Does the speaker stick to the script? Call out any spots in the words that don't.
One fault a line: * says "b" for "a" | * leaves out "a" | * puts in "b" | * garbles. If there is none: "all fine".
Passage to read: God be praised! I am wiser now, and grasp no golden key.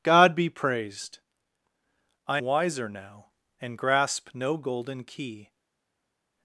* leaves out "am"